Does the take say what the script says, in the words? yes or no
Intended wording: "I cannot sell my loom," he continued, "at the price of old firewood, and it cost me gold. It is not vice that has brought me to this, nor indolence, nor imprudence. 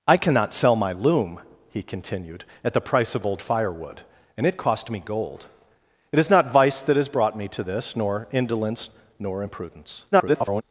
no